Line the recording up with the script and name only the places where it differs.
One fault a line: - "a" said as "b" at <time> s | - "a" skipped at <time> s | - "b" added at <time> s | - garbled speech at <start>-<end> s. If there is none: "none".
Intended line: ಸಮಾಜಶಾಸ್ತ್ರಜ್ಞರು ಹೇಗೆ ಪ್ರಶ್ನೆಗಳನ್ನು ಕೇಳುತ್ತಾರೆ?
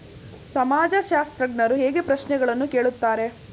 none